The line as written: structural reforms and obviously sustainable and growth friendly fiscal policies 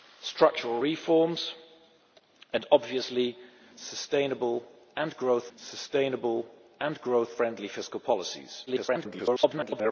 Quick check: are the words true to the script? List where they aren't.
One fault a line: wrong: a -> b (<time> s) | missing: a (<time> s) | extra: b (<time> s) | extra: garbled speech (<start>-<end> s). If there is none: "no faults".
extra: sustainable and growth (5.6 s)
extra: garbled speech (8.7-9.9 s)